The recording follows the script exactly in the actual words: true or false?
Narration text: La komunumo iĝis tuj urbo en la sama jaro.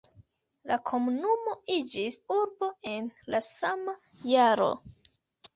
false